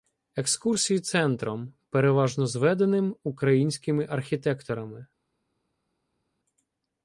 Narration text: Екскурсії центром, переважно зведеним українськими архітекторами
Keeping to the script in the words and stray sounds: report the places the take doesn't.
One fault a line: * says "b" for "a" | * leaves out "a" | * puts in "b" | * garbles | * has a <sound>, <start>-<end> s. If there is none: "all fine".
all fine